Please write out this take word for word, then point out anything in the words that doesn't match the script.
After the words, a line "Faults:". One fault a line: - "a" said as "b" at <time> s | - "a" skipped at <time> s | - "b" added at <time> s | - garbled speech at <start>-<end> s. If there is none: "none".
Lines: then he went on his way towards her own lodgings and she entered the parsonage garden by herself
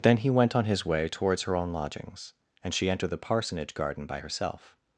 then he went on his way towards her own lodgings and she entered the parsonage garden by herself
Faults:
none